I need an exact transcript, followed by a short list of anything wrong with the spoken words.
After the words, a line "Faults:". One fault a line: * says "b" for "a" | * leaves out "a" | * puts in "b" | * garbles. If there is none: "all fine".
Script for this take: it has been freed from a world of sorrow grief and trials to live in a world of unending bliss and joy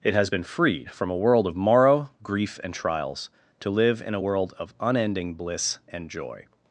it has been freed from a world of morrow grief and trials to live in a world of unending bliss and joy
Faults:
* says "morrow" for "sorrow"